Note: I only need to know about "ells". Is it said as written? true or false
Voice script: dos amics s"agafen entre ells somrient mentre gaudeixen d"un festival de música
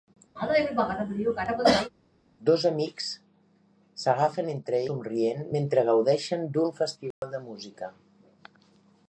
false